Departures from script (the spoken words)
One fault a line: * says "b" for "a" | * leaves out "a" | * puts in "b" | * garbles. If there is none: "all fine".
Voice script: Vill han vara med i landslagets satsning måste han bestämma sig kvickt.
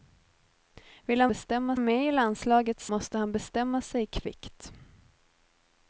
* says "bestämma" for "vara"
* leaves out "satsning"